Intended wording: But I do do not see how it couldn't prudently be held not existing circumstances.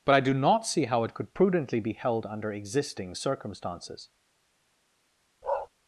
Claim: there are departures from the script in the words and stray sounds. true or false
true